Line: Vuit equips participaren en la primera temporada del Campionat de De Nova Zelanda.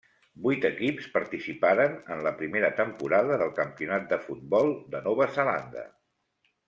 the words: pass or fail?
fail